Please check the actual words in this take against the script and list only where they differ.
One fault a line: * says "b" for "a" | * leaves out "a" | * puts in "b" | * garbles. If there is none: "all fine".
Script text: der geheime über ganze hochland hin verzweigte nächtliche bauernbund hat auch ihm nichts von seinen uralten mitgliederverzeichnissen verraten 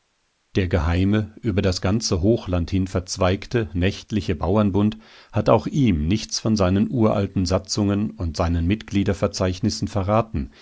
* puts in "das"
* puts in "satzungen und seinen"